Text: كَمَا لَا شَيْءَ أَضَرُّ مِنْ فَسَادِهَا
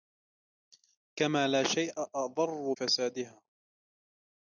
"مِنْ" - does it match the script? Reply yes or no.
no